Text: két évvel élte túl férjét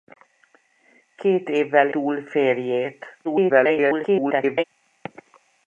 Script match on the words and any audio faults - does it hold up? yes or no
no